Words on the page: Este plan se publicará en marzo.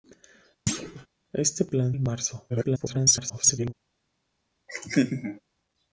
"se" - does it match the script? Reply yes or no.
no